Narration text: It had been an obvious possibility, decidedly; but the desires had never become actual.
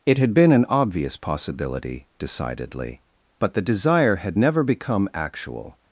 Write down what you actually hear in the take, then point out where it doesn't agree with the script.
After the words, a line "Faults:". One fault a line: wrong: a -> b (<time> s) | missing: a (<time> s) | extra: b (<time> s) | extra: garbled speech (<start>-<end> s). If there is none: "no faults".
It had been an obvious possibility, decidedly; but the desire had never become actual.
Faults:
wrong: desires -> desire (3.6 s)